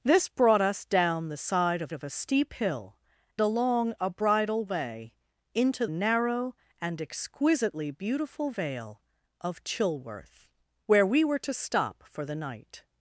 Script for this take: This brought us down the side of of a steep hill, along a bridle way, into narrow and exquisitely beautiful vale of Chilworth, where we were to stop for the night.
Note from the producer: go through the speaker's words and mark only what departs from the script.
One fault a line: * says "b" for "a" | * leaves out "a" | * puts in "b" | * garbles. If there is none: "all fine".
all fine